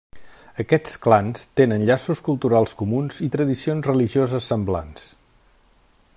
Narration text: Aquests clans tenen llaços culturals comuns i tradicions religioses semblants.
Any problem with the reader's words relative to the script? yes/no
no